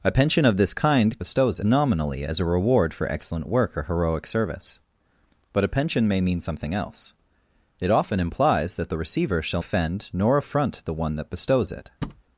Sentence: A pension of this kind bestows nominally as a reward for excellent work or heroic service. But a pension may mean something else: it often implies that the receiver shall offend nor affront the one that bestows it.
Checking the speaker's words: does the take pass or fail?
pass